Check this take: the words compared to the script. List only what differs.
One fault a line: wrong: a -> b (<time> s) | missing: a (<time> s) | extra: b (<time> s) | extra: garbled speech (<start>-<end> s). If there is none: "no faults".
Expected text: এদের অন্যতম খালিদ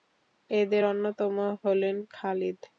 extra: হলেন (1.6 s)